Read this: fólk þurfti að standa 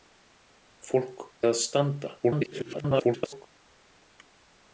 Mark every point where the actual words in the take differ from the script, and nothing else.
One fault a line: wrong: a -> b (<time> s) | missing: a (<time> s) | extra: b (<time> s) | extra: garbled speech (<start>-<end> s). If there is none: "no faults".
missing: þurfti (1.2 s)
extra: garbled speech (2.2-3.5 s)